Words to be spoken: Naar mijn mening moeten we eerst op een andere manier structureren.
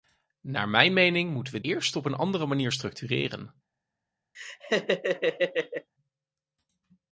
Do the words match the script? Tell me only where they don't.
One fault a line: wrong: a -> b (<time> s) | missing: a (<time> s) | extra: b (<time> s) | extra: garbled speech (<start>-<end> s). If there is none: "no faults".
no faults